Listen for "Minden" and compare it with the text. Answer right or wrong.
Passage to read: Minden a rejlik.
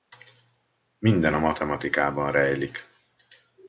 right